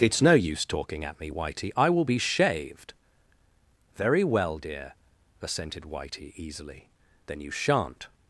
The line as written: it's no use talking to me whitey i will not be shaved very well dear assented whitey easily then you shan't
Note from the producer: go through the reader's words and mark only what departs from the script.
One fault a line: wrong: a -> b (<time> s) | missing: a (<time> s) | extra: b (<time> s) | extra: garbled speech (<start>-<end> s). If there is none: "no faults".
wrong: to -> at (1.1 s)
missing: not (2.0 s)